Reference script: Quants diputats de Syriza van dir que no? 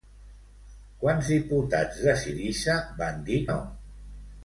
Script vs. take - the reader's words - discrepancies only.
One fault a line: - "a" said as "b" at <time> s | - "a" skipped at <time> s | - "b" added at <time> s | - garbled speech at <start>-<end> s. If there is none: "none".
- "que" skipped at 3.4 s